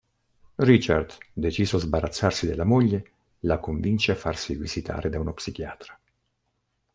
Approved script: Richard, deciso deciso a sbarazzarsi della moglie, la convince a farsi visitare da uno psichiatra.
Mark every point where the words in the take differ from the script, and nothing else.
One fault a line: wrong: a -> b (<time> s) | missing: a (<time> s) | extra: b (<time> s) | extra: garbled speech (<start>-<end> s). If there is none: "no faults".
missing: deciso (1.8 s)